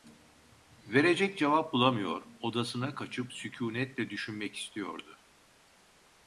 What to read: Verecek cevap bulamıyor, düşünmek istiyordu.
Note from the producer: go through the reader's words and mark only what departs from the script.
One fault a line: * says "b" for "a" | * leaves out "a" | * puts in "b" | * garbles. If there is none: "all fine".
* puts in "odasına kaçıp sükûnetle"